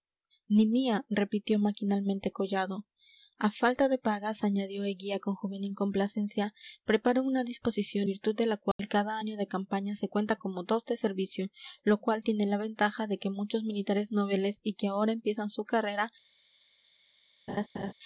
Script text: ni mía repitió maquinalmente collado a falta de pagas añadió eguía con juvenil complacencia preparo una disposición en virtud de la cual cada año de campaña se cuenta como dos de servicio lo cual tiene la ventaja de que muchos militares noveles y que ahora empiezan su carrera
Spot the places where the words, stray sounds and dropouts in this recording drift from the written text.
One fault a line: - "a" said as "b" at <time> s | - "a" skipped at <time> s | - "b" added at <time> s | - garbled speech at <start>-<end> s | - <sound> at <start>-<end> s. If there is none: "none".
- "en" skipped at 8.1 s
- dropout at 8.7-8.8 s
- laugh at 17.5-17.9 s